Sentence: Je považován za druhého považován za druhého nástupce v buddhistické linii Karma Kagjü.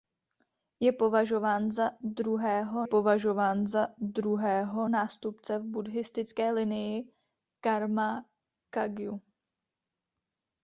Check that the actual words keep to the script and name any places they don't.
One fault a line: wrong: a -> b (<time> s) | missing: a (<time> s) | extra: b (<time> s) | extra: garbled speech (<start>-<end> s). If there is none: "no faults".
no faults